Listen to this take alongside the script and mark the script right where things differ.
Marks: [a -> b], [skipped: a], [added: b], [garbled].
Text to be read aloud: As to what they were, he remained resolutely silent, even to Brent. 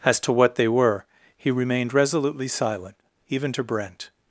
As to what they were, he remained resolutely silent, even to Brent.